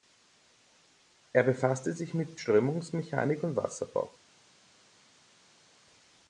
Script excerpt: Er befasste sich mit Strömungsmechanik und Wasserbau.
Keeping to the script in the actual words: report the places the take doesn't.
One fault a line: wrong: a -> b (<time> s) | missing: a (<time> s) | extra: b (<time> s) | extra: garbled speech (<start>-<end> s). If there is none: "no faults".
no faults